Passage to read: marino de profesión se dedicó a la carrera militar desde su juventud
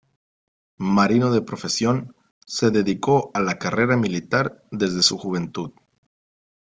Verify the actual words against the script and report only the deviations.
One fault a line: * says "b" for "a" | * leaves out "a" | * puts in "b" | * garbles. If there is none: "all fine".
all fine